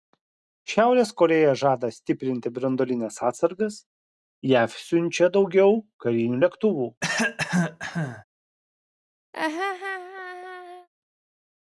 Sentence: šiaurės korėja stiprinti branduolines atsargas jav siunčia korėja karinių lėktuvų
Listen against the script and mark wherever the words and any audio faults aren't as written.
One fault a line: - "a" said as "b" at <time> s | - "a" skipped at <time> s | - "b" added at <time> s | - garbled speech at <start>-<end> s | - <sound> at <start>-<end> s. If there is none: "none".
- "žada" added at 1.6 s
- "korėja" said as "daugiau" at 5.4 s
- cough at 7.0-8.2 s
- laugh at 9.3-10.9 s